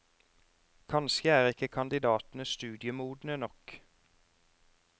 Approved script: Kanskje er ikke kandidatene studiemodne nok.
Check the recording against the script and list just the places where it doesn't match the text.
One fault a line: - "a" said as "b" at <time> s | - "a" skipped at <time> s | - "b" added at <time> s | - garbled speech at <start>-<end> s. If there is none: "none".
none